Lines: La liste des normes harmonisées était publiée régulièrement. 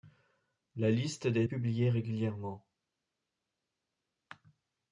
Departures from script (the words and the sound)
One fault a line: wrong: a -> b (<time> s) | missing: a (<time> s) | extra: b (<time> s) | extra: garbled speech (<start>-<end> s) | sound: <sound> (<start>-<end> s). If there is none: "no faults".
missing: normes harmonisées était (1.4 s)